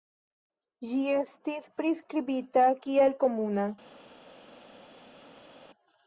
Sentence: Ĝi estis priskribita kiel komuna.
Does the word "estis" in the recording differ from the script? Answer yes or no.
no